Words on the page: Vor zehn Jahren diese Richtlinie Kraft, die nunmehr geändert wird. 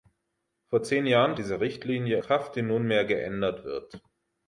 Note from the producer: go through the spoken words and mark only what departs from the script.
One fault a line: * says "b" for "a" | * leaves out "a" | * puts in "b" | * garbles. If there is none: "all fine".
all fine